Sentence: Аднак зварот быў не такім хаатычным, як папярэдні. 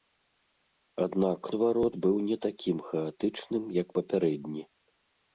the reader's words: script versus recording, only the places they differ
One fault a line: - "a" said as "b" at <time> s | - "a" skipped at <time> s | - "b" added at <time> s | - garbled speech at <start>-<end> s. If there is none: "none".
none